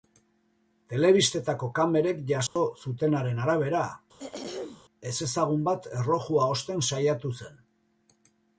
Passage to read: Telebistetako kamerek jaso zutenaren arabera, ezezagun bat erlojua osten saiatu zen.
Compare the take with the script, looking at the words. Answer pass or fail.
pass